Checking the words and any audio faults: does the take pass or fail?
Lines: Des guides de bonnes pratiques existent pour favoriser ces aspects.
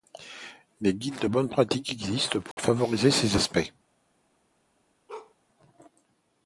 fail